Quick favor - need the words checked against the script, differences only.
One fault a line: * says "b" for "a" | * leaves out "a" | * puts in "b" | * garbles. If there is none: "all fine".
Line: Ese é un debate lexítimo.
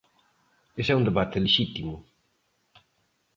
all fine